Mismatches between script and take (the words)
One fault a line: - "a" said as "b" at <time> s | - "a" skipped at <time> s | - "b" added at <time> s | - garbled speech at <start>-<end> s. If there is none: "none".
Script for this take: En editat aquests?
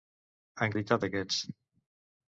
none